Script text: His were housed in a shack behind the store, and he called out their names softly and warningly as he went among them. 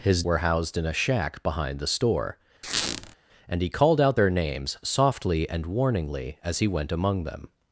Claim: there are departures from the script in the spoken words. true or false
false